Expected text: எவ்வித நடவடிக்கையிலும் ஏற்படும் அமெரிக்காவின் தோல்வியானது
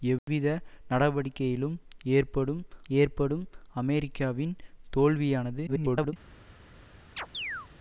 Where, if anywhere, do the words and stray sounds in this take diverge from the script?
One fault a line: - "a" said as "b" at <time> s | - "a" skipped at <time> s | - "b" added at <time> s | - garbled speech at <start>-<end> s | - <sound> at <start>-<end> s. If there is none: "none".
- dropout at 0.2-0.3 s
- "ஏற்படும்" added at 2.9 s
- garbled speech at 5.7-6.1 s
- chirp at 7.2-7.7 s